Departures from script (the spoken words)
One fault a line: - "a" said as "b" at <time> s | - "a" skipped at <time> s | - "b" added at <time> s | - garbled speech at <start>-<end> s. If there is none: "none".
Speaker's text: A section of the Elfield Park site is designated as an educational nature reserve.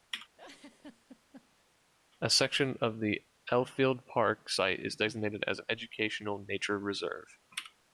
none